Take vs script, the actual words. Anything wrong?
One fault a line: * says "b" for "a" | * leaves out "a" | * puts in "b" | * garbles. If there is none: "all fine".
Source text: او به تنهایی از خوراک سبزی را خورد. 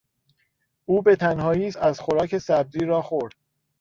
all fine